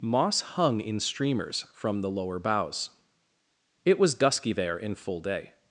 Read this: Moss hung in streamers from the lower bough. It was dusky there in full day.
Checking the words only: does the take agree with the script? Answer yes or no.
no